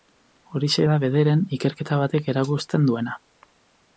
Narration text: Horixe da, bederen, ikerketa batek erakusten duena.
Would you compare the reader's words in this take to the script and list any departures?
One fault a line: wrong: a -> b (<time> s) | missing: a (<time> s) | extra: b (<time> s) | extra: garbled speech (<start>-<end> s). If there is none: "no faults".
no faults